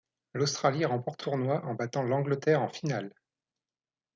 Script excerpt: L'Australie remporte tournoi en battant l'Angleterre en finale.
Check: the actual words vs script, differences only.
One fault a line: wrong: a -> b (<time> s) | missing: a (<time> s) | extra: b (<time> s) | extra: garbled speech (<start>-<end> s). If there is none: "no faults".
no faults